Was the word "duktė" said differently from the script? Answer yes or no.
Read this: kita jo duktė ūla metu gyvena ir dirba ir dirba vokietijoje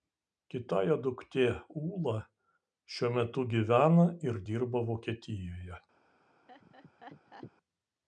no